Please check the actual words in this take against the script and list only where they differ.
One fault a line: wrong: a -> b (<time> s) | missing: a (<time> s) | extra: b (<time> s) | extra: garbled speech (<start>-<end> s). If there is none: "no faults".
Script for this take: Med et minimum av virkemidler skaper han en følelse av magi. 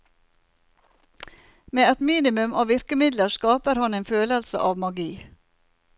no faults